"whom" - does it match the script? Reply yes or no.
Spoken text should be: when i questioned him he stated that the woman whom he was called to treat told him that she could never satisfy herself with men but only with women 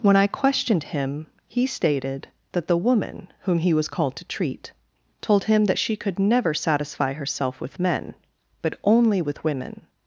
yes